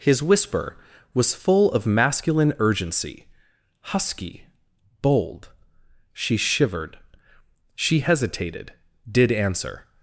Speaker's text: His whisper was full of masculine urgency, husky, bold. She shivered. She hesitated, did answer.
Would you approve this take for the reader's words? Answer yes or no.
yes